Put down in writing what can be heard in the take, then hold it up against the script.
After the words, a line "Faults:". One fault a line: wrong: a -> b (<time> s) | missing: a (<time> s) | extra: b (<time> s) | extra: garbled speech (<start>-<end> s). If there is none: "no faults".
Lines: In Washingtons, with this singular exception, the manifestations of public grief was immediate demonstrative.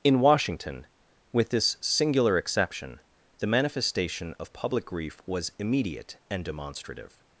In Washington, with this singular exception, the manifestation of public grief was immediate and demonstrative.
Faults:
wrong: Washingtons -> Washington (0.2 s)
wrong: manifestations -> manifestation (3.5 s)
extra: and (6.3 s)